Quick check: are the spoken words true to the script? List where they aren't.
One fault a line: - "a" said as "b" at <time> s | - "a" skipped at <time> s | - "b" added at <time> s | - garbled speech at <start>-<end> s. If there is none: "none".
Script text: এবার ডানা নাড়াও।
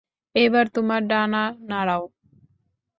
- "তোমার" added at 0.8 s